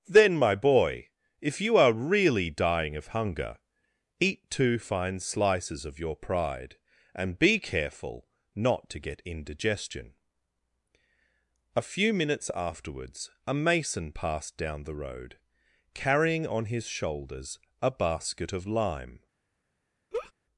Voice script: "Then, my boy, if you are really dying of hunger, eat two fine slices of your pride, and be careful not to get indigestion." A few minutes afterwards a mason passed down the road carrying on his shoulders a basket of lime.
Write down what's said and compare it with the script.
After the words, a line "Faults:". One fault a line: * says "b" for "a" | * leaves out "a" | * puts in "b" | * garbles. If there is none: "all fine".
"Then, my boy, if you are really dying of hunger, eat two fine slices of your pride, and be careful not to get indigestion." A few minutes afterwards a mason passed down the road carrying on his shoulders a basket of lime.
Faults:
all fine